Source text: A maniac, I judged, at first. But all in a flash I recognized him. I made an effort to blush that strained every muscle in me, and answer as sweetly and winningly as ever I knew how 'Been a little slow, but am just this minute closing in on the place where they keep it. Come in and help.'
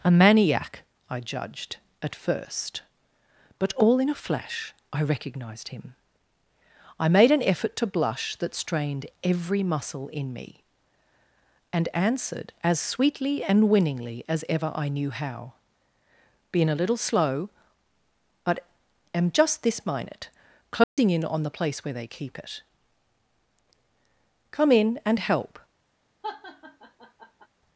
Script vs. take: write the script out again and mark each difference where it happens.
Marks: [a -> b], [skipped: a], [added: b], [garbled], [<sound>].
A maniac, I judged, at first. But all in a flash I recognized him. I made an effort to blush that strained every muscle in me, and [answer -> answered] as sweetly and winningly as ever I knew how 'Been a little slow, but am just this minute closing [dropout] in on the place where they keep it. Come in and help.' [laugh]